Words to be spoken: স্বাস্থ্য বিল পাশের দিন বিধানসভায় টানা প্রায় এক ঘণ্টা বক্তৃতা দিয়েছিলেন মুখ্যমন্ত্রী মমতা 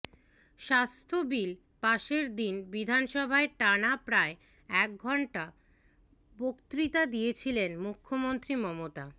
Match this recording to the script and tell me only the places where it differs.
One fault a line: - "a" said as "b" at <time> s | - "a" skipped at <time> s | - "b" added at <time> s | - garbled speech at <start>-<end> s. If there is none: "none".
none